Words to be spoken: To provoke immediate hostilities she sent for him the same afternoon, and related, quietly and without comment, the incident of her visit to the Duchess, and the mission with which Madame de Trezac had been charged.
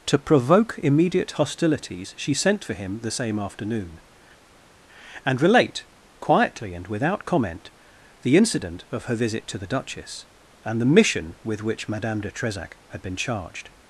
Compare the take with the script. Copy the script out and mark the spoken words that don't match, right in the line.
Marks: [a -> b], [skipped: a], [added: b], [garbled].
To provoke immediate hostilities she sent for him the same afternoon, and [related, -> relate] quietly and without comment, the incident of her visit to the Duchess, and the mission with which Madame de Trezac had been charged.